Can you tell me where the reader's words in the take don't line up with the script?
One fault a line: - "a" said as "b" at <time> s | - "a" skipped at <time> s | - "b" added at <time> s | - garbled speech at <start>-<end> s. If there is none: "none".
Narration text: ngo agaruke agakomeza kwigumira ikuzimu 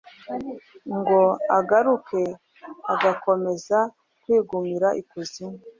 none